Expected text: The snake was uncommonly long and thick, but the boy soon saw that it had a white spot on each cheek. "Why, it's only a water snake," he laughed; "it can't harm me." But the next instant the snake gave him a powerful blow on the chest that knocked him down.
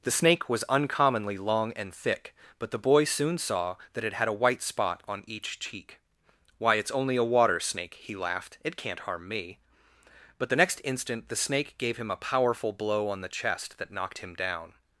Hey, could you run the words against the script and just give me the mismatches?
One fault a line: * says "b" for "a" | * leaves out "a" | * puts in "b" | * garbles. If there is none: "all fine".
all fine